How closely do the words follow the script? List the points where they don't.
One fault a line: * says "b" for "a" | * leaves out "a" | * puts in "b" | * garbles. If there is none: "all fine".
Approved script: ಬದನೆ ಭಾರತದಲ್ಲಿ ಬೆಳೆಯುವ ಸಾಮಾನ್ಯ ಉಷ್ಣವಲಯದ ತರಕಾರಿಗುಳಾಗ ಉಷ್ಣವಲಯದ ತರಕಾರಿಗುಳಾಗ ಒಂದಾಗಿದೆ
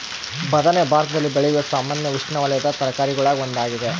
* leaves out "ಉಷ್ಣವಲಯದ ತರಕಾರಿಗುಳಾಗ"